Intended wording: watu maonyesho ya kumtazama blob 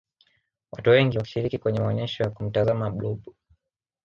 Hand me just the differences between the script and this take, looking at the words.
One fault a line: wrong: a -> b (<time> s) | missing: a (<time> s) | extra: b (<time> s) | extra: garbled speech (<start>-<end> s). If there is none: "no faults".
extra: wengi wakishiriki kwenye (0.9 s)